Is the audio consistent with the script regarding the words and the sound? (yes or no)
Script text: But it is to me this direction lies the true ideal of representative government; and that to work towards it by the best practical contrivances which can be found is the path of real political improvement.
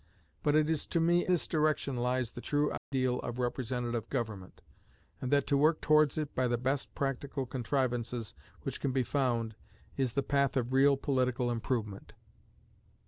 no